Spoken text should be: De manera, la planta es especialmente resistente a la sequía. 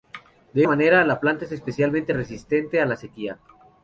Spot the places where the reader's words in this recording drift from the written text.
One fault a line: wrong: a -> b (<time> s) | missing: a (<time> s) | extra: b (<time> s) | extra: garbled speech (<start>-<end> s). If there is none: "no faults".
no faults